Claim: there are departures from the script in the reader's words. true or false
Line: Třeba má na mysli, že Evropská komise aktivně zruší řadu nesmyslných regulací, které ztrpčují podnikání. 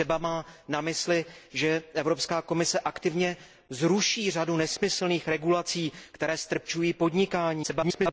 true